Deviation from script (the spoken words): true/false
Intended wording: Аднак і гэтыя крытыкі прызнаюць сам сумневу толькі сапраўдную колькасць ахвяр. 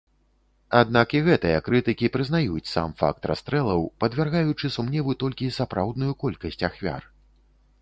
true